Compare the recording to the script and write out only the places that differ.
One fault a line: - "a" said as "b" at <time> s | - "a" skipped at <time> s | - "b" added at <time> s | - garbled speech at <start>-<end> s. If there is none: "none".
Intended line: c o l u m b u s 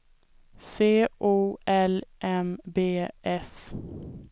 - "u" skipped at 2.0 s
- "u" skipped at 3.1 s